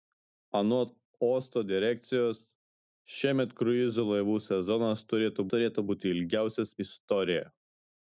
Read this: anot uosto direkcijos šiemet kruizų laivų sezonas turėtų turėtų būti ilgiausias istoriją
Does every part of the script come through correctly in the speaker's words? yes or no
yes